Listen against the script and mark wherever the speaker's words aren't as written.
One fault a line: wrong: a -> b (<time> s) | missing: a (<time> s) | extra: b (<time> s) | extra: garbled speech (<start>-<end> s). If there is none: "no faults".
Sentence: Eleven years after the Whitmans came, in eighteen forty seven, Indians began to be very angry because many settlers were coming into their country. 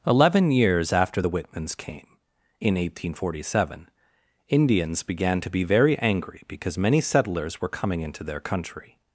no faults